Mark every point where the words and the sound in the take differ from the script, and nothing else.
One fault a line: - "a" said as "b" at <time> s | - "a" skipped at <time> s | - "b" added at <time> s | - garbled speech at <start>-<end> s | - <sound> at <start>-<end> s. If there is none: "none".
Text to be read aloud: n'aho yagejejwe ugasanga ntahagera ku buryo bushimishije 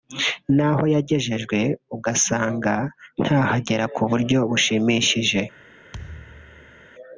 - thud at 5.9-6.9 s